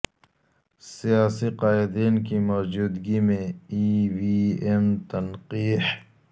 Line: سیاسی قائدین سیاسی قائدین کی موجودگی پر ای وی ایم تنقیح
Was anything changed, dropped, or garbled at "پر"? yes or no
yes